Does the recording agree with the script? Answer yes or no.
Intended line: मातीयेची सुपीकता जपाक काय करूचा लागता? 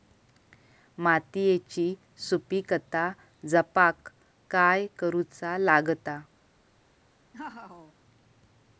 yes